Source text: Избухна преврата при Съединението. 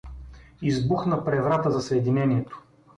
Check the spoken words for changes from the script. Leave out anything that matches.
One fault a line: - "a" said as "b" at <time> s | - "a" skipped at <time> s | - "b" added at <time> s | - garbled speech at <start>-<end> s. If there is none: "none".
- "при" said as "за" at 1.7 s